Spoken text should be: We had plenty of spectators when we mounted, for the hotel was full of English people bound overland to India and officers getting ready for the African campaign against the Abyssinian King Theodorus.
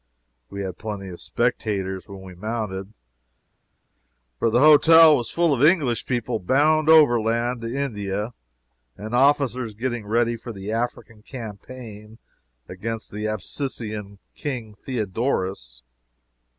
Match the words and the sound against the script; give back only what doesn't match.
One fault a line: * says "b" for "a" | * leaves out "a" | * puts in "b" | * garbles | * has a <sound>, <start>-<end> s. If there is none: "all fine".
all fine